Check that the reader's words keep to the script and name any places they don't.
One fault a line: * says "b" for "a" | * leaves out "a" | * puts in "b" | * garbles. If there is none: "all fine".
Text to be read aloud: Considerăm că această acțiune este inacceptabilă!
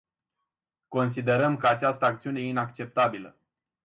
* leaves out "este"